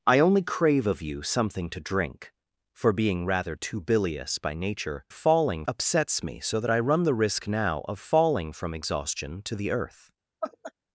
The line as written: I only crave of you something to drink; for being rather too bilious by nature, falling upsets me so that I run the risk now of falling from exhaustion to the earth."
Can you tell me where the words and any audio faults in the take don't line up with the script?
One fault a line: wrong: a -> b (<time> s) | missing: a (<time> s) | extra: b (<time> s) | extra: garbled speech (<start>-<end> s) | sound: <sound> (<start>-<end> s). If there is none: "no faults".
sound: laugh (10.4-10.7 s)